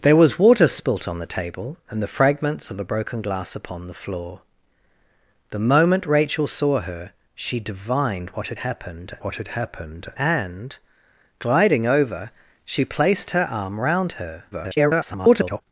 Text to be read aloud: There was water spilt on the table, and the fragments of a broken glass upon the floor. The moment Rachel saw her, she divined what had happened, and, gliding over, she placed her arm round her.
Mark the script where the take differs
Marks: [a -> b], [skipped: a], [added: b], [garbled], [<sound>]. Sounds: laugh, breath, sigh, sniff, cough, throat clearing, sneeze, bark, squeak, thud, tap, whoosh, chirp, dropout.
There was water spilt on the table, and the fragments of a broken glass upon the floor. The moment Rachel saw her, she divined what had happened, [added: what had happened] and, gliding over, she placed her arm round her. [garbled]